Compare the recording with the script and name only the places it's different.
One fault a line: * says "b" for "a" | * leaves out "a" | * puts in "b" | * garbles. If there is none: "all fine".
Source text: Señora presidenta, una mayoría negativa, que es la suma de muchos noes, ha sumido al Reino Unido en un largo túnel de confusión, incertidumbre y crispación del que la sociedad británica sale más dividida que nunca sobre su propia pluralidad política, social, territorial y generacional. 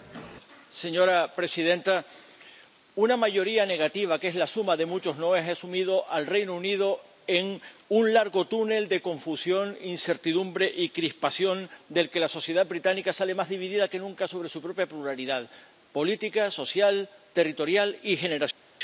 all fine